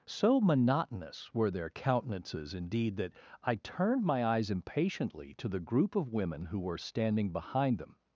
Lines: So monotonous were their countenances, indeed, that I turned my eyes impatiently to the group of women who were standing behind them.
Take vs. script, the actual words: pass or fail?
pass